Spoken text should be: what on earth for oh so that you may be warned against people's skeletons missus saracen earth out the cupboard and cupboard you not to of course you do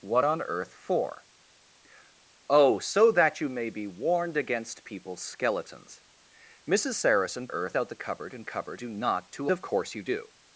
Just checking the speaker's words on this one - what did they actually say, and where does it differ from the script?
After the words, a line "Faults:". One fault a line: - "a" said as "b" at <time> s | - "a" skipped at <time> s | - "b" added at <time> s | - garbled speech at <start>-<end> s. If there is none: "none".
what on earth for oh so that you may be warned against people's skeletons missus saracen earth out the cupboard and cupboard you not to of course you do
Faults:
none